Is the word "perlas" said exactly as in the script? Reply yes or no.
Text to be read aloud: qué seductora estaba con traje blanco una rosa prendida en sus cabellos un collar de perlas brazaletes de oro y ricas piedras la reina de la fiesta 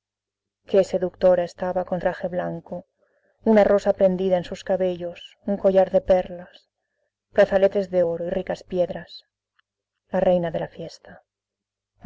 yes